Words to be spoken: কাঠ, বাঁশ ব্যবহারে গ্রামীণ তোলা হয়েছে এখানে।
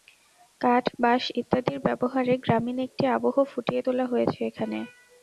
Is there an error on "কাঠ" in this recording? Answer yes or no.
no